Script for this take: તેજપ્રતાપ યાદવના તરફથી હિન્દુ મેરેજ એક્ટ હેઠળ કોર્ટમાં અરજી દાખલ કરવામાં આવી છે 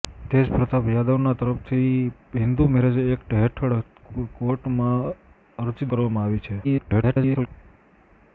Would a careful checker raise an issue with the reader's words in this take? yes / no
yes